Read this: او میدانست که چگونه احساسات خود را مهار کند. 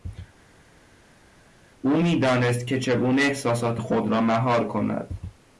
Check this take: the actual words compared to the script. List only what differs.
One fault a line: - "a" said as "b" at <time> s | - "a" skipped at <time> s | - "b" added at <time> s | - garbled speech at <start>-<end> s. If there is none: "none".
none